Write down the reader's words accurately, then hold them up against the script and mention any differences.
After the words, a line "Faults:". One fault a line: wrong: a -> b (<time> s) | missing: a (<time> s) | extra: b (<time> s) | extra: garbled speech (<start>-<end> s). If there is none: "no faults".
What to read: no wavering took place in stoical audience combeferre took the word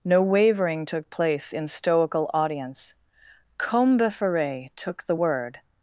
no wavering took place in stoical audience combeferre took the word
Faults:
no faults